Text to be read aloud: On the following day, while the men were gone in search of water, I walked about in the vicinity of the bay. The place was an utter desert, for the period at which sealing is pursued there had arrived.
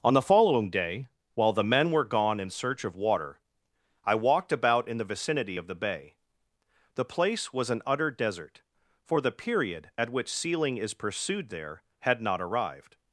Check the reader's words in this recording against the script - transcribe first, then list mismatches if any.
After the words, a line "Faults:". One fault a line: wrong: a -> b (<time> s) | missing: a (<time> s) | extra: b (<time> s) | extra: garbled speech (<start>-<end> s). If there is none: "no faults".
On the following day, while the men were gone in search of water, I walked about in the vicinity of the bay. The place was an utter desert, for the period at which sealing is pursued there had not arrived.
Faults:
extra: not (12.2 s)